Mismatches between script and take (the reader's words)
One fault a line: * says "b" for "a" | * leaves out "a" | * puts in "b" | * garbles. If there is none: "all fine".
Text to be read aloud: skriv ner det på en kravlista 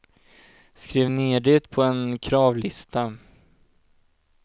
all fine